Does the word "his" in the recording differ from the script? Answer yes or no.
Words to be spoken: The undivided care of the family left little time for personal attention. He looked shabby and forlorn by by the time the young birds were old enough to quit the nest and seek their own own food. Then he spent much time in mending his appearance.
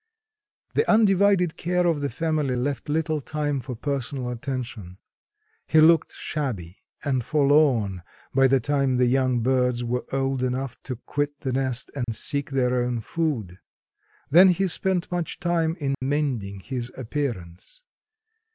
no